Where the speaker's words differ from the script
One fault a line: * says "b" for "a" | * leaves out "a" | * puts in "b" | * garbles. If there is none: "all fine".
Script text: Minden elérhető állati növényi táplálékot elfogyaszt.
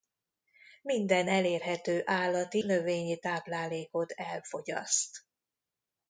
all fine